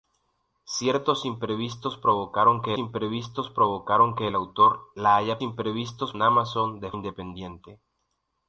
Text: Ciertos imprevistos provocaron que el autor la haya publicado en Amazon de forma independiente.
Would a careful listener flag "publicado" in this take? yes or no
yes